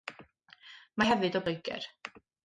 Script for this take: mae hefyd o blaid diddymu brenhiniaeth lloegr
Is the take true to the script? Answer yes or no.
no